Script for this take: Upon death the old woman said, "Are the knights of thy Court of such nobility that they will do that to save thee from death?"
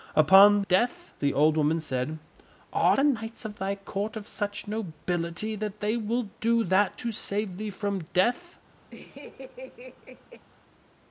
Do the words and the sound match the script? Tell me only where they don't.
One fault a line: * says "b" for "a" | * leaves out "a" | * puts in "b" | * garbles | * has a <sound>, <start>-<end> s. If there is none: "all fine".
* has a laugh, 8.9-10.5 s